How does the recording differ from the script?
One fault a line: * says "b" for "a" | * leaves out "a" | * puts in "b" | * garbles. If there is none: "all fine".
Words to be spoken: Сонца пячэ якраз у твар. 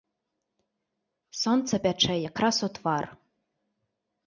all fine